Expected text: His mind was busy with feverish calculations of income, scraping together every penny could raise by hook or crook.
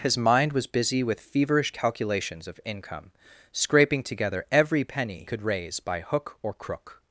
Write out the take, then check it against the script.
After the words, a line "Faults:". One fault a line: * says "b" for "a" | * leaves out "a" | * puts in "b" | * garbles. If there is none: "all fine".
His mind was busy with feverish calculations of income, scraping together every penny could raise by hook or crook.
Faults:
all fine